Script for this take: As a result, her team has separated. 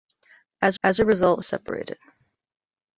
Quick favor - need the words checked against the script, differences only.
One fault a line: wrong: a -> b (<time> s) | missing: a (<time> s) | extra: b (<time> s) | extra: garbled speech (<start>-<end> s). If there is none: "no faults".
extra: as (0.8 s)
missing: her team has (1.4 s)